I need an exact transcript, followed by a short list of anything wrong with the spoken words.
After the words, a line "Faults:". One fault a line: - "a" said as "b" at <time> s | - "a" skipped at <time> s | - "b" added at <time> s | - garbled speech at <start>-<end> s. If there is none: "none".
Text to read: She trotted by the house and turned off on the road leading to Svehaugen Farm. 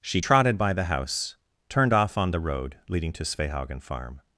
She trotted by the house turned off on the road leading to Svehaugen Farm.
Faults:
- "and" skipped at 1.3 s